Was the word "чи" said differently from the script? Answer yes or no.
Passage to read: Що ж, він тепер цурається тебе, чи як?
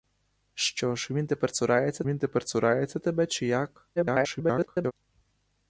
no